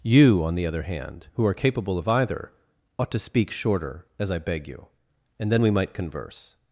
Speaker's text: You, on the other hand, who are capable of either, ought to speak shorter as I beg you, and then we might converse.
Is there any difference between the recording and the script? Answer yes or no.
no